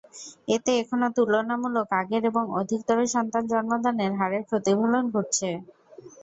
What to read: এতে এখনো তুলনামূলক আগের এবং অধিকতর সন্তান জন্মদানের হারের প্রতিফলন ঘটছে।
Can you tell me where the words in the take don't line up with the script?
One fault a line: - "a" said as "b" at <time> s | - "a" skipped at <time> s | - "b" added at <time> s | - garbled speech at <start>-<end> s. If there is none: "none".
none